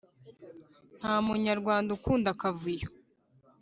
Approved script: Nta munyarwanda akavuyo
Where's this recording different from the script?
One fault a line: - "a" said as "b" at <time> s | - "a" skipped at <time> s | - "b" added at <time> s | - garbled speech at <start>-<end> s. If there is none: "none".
- "ukunda" added at 2.0 s